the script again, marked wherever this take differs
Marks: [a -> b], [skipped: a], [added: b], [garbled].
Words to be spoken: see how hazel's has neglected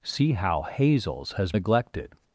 see how hazel's has neglected